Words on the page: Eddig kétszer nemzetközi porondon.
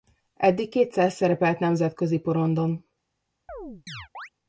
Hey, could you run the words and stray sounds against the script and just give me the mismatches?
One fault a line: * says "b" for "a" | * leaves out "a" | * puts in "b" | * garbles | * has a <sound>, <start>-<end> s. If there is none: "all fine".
* puts in "szerepelt"
* has a chirp, 3.5-4.3 s